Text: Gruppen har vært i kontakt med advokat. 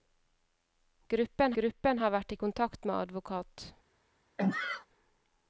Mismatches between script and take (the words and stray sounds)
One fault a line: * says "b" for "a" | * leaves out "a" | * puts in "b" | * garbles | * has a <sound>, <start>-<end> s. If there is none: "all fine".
* puts in "gruppen"
* has a sneeze, 4.4-4.9 s